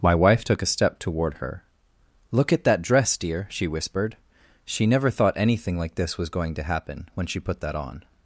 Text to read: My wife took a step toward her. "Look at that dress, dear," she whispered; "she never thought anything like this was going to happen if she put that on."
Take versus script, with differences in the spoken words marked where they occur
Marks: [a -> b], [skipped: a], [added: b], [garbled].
My wife took a step toward her. "Look at that dress, dear," she whispered; "she never thought anything like this was going to happen [if -> when] she put that on."